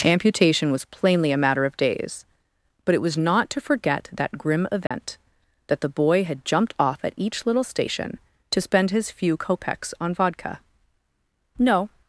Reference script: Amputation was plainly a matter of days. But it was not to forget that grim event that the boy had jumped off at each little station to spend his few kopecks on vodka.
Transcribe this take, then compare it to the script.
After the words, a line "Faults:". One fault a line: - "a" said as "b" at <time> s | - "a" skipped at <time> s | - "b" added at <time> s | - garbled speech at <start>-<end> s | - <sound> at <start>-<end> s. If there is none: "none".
Amputation was plainly a matter of days. But it was not to forget that grim event that the boy had jumped off at each little station to spend his few kopecks on vodka. No
Faults:
- dropout at 4.9-4.9 s
- "No" added at 11.6 s